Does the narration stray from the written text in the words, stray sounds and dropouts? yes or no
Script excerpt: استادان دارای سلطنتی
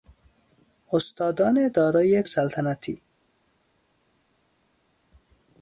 no